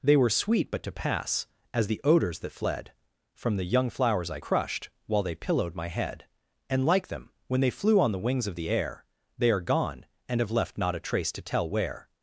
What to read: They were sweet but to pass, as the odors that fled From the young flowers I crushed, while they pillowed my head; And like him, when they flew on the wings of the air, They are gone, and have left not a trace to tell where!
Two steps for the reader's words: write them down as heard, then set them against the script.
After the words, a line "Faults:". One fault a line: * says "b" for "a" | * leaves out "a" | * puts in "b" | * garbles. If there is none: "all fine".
They were sweet but to pass, as the odors that fled From the young flowers I crushed, while they pillowed my head; And like them, when they flew on the wings of the air, They are gone, and have left not a trace to tell where!
Faults:
* says "them" for "him"